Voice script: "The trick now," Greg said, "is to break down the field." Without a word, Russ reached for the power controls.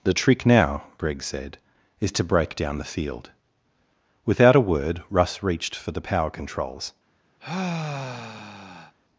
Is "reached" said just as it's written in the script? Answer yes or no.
yes